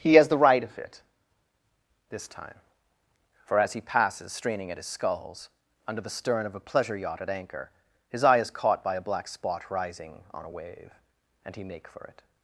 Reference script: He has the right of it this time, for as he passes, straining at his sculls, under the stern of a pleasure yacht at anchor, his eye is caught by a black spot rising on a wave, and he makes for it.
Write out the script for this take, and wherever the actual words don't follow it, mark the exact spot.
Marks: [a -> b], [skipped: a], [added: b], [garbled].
He has the right of it this time, for as he passes, straining at his sculls, under the stern of a pleasure yacht at anchor, his eye is caught by a black spot rising on a wave, and he [makes -> make] for it.